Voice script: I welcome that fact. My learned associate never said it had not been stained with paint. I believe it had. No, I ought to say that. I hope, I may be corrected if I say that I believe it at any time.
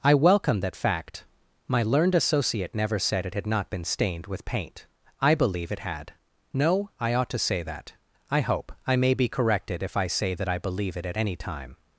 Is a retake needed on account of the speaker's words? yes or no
no